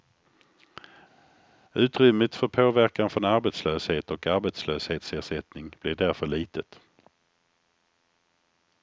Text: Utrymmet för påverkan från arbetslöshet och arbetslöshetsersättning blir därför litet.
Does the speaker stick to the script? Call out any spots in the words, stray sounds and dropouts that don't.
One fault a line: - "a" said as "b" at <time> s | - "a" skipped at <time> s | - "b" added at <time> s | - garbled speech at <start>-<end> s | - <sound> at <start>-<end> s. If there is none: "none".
none